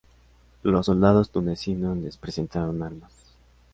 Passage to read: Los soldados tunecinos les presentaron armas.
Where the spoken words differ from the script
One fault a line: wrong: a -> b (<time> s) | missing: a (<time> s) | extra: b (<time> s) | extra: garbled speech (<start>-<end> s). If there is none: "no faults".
no faults